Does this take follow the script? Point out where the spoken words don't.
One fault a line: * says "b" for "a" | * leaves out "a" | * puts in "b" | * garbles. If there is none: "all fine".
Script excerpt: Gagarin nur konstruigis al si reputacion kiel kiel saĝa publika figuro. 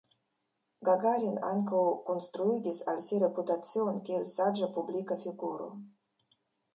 * says "ankaŭ" for "nur"
* leaves out "kiel"